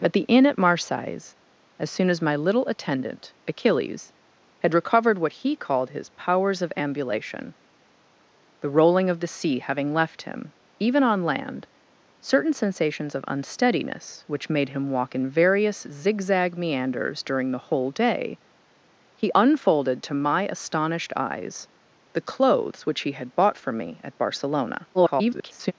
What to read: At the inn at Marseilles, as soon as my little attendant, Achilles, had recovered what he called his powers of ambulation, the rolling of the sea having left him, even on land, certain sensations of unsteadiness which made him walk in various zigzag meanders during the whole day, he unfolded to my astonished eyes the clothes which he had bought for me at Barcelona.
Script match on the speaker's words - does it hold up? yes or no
no